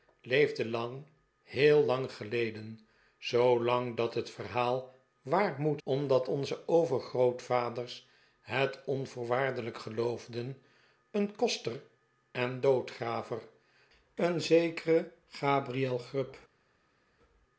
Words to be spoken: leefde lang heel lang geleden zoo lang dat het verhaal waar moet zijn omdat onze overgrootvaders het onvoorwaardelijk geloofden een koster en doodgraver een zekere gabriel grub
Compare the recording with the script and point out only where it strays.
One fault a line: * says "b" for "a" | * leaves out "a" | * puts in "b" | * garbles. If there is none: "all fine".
* leaves out "zijn"